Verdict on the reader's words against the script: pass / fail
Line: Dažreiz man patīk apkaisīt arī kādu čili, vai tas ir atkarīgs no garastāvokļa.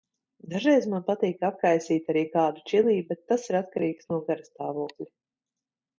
fail